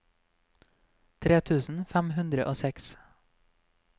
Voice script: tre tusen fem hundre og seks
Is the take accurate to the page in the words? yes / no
yes